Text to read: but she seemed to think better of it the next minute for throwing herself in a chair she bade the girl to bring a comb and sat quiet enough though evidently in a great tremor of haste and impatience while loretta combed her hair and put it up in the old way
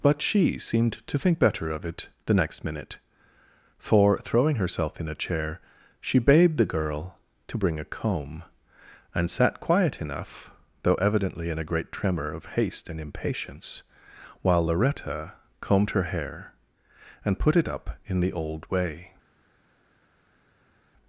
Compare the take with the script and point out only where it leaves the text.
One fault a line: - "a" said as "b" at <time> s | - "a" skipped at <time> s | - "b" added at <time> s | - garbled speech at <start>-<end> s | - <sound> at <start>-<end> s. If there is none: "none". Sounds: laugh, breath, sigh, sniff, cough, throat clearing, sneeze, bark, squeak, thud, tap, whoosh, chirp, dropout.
none